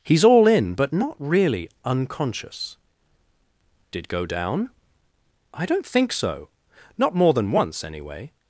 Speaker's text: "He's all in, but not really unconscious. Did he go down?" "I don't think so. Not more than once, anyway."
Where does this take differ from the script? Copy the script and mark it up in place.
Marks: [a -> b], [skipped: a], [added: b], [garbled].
"He's all in, but not really unconscious. Did [skipped: he] go down?" "I don't think so. Not more than once, anyway."